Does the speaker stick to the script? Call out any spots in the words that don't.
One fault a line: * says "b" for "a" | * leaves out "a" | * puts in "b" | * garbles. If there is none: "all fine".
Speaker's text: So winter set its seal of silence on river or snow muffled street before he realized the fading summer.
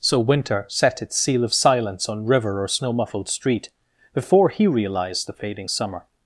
all fine